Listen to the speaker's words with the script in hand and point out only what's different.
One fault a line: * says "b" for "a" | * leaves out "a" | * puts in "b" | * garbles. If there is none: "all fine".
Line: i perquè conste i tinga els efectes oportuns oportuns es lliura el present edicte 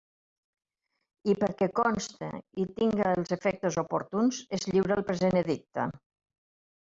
* leaves out "oportuns"